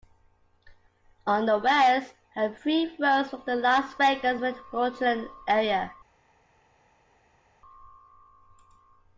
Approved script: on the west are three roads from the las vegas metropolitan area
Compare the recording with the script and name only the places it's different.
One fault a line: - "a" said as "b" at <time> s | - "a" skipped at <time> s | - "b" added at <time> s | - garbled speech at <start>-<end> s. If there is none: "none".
none